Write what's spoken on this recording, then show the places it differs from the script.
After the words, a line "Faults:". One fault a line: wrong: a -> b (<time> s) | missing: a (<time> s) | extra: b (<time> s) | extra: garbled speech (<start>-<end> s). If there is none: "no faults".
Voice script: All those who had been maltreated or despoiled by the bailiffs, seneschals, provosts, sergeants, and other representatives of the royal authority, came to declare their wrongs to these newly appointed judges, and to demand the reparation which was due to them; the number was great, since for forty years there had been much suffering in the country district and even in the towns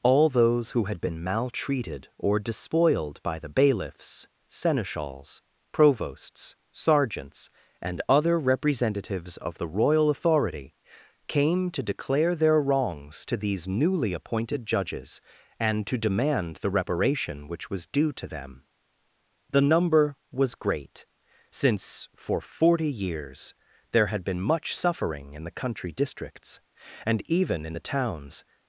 All those who had been maltreated or despoiled by the bailiffs, seneschals, provosts, sergeants, and other representatives of the royal authority, came to declare their wrongs to these newly appointed judges, and to demand the reparation which was due to them; the number was great, since for forty years there had been much suffering in the country districts and even in the towns
Faults:
wrong: district -> districts (25.9 s)